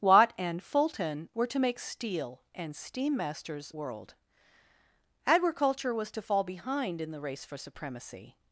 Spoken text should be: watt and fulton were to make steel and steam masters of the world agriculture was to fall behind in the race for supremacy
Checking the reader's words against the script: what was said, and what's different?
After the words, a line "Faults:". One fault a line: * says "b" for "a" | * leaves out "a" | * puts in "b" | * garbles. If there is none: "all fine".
watt and fulton were to make steel and steam masters world agriculture was to fall behind in the race for supremacy
Faults:
* leaves out "of the"